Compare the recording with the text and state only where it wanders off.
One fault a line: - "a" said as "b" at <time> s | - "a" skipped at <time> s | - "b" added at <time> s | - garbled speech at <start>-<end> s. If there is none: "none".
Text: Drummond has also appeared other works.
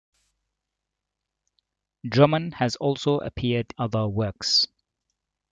none